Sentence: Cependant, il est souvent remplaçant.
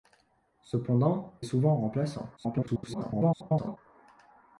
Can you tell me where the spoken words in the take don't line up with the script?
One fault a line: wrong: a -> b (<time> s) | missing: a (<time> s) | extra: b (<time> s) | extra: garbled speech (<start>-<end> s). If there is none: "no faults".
missing: il (1.4 s)
extra: garbled speech (2.4-3.8 s)